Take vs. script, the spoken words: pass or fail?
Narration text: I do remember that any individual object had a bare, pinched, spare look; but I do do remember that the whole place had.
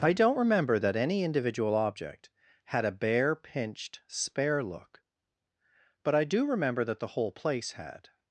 fail